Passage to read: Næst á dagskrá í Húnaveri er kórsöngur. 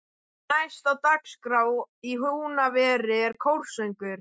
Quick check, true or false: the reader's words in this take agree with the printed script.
true